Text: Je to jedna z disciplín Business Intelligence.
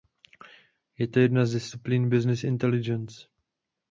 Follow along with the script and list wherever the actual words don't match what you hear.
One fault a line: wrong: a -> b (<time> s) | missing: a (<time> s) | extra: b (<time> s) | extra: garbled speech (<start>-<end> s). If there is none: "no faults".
no faults